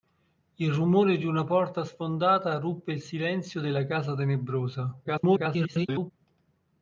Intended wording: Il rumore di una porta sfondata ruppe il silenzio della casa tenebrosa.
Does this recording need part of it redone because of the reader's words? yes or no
yes